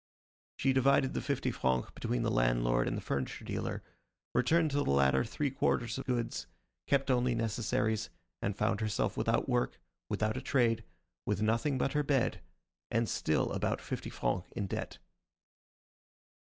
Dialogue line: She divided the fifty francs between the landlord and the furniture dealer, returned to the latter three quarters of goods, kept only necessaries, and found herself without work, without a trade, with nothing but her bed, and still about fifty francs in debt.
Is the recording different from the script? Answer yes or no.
no